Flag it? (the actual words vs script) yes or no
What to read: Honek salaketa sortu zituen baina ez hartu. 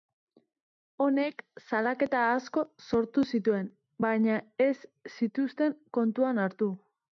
yes